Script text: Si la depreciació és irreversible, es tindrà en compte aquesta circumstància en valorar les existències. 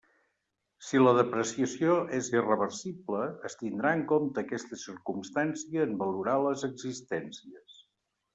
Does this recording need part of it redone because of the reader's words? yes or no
no